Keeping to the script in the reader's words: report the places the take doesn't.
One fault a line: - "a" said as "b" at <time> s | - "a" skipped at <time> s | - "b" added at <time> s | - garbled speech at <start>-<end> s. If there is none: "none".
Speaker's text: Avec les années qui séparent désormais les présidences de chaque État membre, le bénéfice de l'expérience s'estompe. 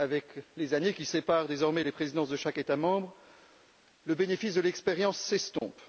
none